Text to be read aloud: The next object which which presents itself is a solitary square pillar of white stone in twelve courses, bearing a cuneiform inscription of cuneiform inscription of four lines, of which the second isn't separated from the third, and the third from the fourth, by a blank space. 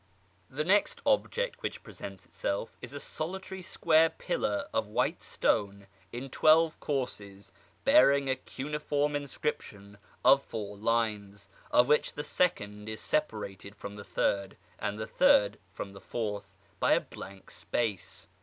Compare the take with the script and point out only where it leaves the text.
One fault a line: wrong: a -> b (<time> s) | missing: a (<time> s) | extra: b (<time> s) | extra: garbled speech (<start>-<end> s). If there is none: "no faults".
missing: which (1.8 s)
missing: cuneiform inscription of (10.4 s)
wrong: isn't -> is (12.9 s)